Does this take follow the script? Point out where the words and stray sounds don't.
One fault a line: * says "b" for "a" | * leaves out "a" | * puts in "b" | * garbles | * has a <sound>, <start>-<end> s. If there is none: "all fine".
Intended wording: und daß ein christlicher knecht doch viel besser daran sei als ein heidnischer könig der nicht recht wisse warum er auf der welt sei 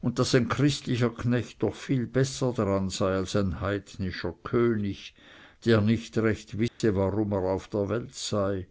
* has a dropout, 6.7-6.8 s